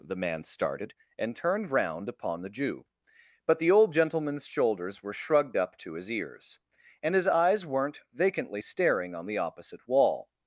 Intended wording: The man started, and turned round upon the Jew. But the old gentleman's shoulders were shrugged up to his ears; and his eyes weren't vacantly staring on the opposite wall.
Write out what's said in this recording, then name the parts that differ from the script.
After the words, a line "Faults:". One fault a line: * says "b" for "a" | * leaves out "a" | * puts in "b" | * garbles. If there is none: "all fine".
The man started, and turned round upon the Jew. But the old gentleman's shoulders were shrugged up to his ears; and his eyes weren't vacantly staring on the opposite wall.
Faults:
all fine